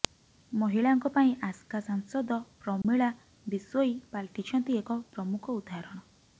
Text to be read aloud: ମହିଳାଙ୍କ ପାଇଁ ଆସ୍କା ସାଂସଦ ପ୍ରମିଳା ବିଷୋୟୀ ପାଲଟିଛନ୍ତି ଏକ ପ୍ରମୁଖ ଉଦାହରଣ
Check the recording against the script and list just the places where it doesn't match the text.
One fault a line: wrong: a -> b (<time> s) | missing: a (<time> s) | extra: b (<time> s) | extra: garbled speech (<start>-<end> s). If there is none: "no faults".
no faults